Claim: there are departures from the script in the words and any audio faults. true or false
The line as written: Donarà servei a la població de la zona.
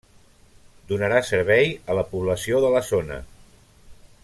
false